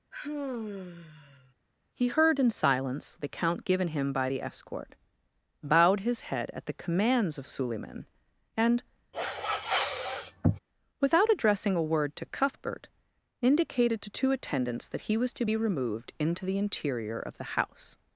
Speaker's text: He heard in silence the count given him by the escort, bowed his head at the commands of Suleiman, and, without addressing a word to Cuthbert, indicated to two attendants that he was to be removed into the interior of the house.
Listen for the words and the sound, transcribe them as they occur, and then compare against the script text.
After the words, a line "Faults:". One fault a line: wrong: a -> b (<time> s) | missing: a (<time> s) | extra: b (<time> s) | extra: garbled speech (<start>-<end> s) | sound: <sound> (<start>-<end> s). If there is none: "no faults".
He heard in silence the count given him by the escort, bowed his head at the commands of Suleiman, and, without addressing a word to Cuthbert, indicated to two attendants that he was to be removed into the interior of the house.
Faults:
sound: sigh (0.1-1.5 s)
sound: sniff (9.1-10.6 s)